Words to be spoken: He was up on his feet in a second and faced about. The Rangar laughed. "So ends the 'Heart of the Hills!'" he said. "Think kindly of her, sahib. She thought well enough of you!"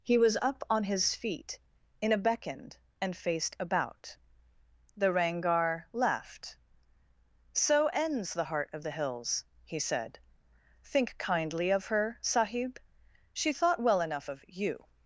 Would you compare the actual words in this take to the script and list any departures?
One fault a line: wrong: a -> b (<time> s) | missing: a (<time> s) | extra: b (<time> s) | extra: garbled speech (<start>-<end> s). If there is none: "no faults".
wrong: second -> beckoned (2.2 s)